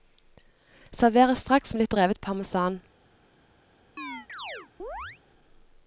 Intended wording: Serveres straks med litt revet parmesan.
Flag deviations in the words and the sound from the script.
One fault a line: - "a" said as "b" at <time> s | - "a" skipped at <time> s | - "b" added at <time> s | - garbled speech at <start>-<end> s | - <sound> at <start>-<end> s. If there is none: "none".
- chirp at 4.0-5.2 s